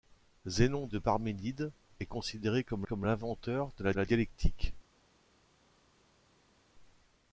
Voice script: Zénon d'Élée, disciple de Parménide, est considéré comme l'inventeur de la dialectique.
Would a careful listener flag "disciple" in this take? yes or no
yes